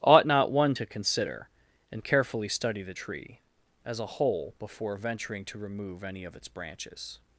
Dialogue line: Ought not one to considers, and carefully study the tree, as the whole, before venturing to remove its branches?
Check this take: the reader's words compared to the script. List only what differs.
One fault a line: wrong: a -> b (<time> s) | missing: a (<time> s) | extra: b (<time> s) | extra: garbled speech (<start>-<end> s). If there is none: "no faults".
wrong: considers -> consider (0.8 s)
wrong: the -> a (4.0 s)
extra: any of (6.0 s)